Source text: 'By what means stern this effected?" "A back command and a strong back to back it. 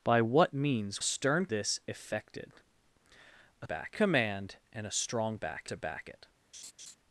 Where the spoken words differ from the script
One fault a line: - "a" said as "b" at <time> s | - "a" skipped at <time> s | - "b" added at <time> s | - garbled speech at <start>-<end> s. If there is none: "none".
none